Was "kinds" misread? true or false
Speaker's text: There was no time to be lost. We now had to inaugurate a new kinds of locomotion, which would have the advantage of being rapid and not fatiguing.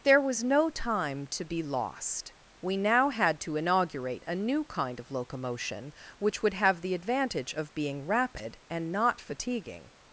true